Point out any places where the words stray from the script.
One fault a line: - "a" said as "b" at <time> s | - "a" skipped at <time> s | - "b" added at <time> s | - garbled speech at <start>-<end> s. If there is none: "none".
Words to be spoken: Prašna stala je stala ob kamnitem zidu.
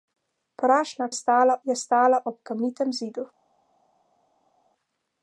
none